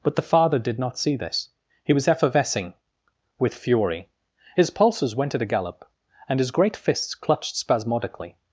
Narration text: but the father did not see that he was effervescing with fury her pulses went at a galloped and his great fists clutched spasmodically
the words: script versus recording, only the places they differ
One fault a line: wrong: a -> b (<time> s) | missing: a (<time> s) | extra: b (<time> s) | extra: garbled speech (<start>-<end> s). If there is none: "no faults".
wrong: that -> this (1.1 s)
wrong: her -> his (4.6 s)
wrong: galloped -> gallop (5.5 s)